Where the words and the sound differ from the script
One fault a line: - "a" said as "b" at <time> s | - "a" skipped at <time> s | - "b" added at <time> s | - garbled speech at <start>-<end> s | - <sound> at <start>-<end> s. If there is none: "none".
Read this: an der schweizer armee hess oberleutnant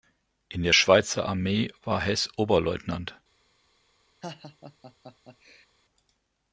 - "an" said as "in" at 0.5 s
- "war" added at 1.8 s
- laugh at 4.2-5.7 s